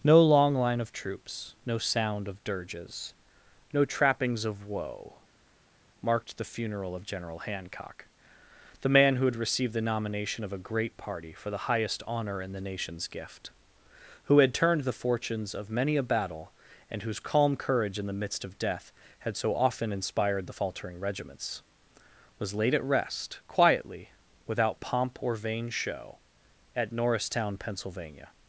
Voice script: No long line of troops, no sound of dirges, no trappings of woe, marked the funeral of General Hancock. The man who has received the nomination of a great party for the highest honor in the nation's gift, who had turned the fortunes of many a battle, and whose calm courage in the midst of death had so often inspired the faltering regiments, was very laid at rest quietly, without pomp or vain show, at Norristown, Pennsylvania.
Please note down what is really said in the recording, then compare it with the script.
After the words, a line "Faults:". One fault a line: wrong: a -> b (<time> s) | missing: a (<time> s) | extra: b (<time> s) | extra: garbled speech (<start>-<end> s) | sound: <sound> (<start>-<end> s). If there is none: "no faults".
No long line of troops, no sound of dirges, no trappings of woe, marked the funeral of General Hancock. The man who had received the nomination of a great party for the highest honor in the nation's gift, who had turned the fortunes of many a battle, and whose calm courage in the midst of death had so often inspired the faltering regiments, was laid at rest quietly, without pomp or vain show, at Norristown, Pennsylvania.
Faults:
wrong: has -> had (9.2 s)
missing: very (22.5 s)